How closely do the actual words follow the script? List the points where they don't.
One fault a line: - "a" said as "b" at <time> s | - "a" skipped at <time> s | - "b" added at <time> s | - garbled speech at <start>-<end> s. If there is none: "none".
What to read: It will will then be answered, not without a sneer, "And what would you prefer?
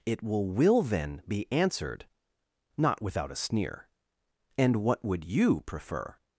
none